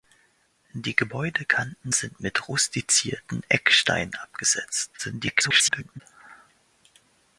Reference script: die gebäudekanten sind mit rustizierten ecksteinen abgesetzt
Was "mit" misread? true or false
false